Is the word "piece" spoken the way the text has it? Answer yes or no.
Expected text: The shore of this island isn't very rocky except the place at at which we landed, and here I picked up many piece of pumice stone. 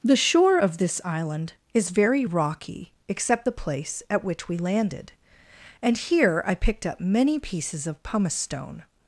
no